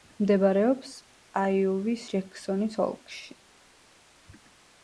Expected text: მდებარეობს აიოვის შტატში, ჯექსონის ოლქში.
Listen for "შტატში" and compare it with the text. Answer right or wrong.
wrong